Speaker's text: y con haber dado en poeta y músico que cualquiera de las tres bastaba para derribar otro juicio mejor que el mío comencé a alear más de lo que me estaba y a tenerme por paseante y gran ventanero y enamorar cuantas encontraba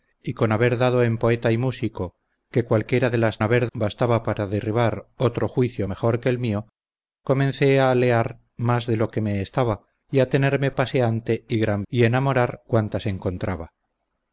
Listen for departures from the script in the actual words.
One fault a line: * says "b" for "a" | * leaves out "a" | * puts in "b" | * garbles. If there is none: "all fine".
* says "haber" for "tres"
* leaves out "por"
* leaves out "ventanero"